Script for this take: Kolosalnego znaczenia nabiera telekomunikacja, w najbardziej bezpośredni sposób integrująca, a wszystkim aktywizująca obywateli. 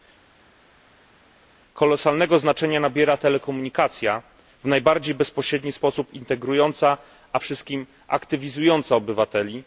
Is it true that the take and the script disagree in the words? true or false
false